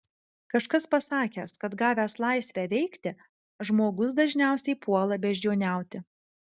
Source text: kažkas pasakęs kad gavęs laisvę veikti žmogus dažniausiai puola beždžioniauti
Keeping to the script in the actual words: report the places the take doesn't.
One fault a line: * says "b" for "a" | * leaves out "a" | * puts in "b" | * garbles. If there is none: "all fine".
all fine